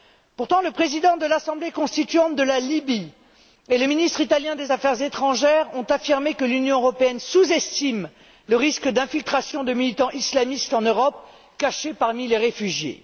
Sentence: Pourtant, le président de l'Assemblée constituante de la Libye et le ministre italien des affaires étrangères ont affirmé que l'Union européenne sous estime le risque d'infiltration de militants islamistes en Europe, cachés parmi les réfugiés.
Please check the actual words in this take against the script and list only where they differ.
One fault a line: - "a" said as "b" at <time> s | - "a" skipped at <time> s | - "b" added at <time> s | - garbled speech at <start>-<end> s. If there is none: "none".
none